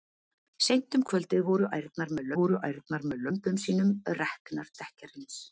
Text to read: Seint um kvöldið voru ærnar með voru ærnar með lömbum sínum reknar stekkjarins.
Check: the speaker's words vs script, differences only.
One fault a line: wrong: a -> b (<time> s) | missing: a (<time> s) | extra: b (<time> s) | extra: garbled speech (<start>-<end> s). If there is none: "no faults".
no faults